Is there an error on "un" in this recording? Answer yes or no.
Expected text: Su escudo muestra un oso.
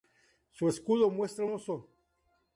yes